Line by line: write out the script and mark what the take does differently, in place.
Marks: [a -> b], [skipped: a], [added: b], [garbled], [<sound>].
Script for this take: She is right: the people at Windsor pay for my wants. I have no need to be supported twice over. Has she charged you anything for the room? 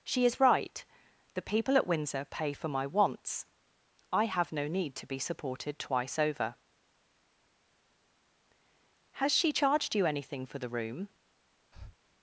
She is right: the people at Windsor pay for my wants. I have no need to be supported twice over. Has she charged you anything for the room? [breath]